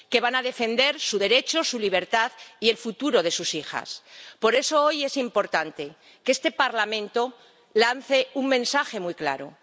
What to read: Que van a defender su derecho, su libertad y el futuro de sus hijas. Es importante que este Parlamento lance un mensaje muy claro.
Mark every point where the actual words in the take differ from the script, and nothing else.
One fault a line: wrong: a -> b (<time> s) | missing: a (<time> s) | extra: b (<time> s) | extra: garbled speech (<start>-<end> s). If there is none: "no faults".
extra: Por eso hoy (4.4 s)